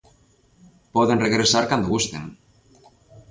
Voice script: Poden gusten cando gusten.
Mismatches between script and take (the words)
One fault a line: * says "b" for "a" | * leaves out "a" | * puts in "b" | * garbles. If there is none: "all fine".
* says "regresar" for "gusten"